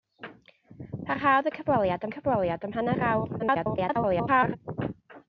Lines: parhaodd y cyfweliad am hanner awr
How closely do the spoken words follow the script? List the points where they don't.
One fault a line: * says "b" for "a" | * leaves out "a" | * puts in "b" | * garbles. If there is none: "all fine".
* puts in "cyfweliad"
* garbles